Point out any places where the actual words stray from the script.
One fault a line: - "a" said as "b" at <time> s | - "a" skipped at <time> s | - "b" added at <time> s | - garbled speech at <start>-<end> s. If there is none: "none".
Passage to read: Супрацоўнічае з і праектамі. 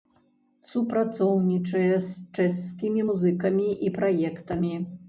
- "чэшскімі музыкамі" added at 2.4 s